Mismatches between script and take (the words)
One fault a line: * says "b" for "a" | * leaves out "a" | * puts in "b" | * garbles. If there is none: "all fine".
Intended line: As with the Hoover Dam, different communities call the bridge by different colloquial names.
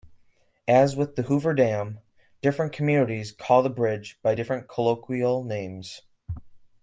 all fine